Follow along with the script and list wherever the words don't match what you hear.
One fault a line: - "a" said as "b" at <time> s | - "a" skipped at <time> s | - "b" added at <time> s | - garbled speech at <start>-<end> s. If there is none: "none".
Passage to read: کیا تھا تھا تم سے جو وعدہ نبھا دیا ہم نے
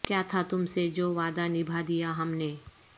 - "تھا" skipped at 0.4 s